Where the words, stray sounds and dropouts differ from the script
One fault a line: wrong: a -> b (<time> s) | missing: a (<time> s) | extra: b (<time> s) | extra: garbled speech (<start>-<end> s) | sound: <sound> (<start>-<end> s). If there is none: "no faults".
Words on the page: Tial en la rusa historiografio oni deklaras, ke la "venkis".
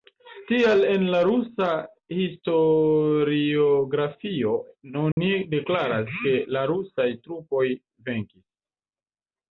sound: dropout (5.1-5.2 s)
extra: rusaj trupoj (6.7 s)